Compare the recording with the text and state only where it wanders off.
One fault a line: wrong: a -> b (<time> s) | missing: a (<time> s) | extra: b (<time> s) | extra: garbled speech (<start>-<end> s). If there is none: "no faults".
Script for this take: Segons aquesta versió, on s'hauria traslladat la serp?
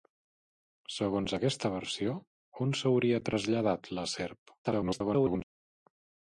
extra: garbled speech (4.6-5.4 s)